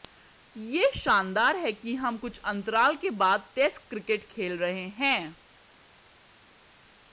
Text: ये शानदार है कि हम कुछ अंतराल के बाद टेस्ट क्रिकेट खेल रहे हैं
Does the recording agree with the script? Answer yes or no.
yes